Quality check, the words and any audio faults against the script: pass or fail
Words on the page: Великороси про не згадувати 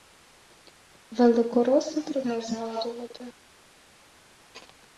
pass